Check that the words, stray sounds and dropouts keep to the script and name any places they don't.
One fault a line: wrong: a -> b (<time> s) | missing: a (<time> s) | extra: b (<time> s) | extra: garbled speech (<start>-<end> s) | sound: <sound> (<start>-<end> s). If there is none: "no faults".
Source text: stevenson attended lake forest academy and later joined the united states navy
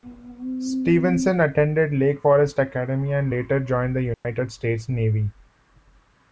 sound: dropout (4.1-4.2 s)